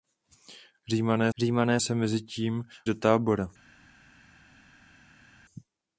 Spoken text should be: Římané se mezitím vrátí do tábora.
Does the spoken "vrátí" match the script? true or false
false